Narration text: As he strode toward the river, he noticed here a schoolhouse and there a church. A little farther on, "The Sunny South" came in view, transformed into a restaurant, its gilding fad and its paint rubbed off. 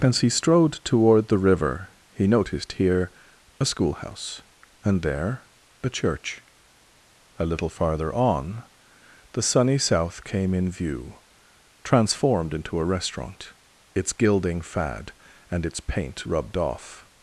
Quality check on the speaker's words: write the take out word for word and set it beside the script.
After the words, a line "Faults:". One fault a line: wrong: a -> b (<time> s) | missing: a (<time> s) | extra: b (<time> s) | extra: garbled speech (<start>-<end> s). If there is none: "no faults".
As he strode toward the river, he noticed here a schoolhouse and there a church. A little farther on, "The Sunny South" came in view, transformed into a restaurant, its gilding fad and its paint rubbed off.
Faults:
no faults